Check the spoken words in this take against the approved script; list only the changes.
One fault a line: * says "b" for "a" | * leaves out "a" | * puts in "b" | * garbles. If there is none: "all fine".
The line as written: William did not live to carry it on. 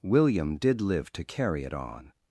* leaves out "not"